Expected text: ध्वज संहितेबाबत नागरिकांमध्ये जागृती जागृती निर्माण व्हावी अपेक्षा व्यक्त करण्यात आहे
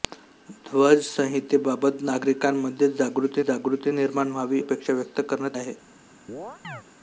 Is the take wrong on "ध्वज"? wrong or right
right